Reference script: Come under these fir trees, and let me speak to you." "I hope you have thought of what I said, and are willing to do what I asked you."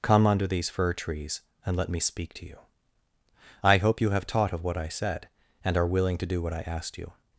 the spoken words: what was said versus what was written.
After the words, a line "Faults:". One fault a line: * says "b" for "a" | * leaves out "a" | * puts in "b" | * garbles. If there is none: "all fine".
Come under these fir trees, and let me speak to you." "I hope you have taught of what I said, and are willing to do what I asked you."
Faults:
* says "taught" for "thought"